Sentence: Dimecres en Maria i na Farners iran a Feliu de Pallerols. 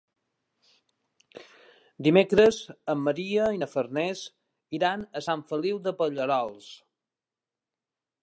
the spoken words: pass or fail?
fail